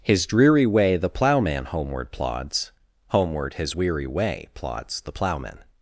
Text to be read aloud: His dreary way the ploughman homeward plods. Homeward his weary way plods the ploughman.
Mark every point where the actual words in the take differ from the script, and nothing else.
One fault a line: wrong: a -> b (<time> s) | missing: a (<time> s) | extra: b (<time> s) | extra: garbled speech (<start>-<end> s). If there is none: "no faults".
no faults